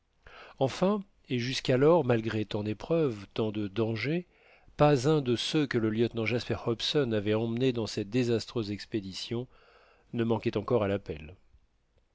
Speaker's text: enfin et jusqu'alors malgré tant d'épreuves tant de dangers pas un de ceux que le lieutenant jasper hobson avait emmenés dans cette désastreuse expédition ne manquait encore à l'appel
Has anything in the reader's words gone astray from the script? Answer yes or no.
no